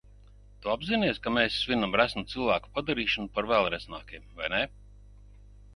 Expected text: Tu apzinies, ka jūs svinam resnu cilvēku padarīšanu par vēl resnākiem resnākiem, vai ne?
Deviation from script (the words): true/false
true